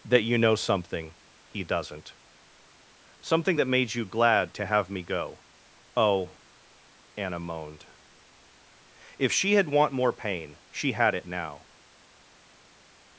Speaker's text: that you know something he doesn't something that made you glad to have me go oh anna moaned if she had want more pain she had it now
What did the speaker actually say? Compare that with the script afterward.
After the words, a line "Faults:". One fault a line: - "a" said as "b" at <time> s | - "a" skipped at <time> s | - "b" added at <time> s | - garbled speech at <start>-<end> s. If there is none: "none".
that you know something he doesn't something that made you glad to have me go oh anna moaned if she had want more pain she had it now
Faults:
none